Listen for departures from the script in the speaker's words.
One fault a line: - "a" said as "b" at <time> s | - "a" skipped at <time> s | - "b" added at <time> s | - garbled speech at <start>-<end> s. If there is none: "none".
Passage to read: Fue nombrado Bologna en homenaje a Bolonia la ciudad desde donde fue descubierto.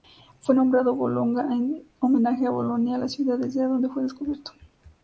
none